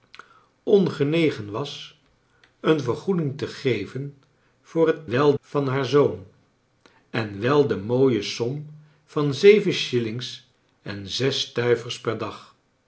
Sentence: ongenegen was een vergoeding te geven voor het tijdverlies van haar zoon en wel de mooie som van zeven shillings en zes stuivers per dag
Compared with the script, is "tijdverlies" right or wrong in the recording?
wrong